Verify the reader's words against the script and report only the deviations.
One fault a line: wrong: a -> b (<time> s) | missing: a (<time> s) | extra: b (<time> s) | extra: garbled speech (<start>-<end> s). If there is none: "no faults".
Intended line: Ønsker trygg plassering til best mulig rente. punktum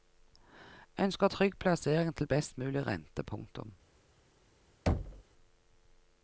no faults